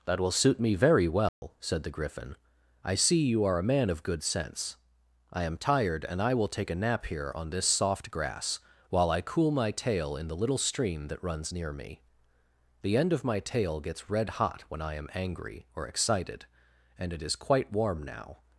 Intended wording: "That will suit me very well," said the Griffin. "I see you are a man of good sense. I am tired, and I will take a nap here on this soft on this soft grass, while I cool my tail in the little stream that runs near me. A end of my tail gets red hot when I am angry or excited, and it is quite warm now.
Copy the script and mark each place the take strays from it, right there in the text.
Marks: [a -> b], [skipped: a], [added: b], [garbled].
"That will suit me very well," said the Griffin. "I see you are a man of good sense. I am tired, and I will take a nap here on this soft [skipped: on this soft] grass, while I cool my tail in the little stream that runs near me. [A -> The] end of my tail gets red hot when I am angry or excited, and it is quite warm now.